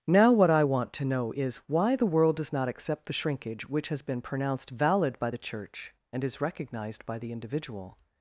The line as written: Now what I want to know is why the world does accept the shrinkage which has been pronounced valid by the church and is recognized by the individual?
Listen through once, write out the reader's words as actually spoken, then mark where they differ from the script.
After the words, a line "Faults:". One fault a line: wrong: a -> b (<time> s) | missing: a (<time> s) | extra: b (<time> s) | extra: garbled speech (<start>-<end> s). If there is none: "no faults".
Now what I want to know is why the world does not accept the shrinkage which has been pronounced valid by the church and is recognized by the individual?
Faults:
extra: not (2.5 s)